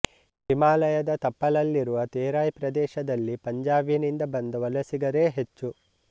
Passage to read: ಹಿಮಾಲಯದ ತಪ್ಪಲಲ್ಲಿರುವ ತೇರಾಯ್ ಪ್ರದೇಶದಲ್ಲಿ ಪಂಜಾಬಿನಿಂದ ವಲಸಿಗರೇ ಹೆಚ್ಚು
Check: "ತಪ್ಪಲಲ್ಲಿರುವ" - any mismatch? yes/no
no